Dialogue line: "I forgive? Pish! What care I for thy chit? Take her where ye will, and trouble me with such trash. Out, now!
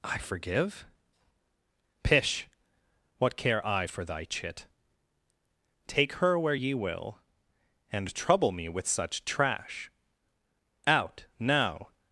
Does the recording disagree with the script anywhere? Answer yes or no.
no